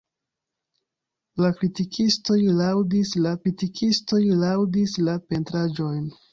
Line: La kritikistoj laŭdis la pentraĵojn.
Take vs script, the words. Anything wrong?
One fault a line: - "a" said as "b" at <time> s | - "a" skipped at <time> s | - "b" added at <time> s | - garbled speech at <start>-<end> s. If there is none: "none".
- "kritikistoj laŭdis la" added at 3.4 s